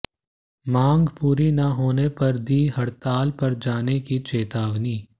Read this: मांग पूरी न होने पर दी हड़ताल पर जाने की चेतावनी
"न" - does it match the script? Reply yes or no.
yes